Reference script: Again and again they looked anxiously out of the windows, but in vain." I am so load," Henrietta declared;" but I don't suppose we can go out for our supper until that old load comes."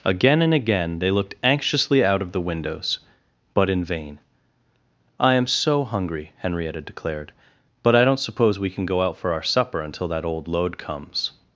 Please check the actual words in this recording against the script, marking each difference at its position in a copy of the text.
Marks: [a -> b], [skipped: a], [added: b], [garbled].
Again and again they looked anxiously out of the windows, but in vain." I am so [load," -> hungry] Henrietta declared;" but I don't suppose we can go out for our supper until that old load comes."